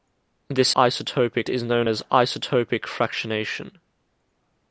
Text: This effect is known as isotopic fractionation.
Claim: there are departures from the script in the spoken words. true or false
true